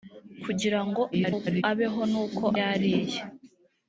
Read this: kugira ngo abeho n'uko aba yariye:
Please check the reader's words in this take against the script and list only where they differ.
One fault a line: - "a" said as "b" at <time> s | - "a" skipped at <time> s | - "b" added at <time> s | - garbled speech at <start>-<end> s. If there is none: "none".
- garbled speech at 1.1-1.6 s
- "aba" skipped at 2.4 s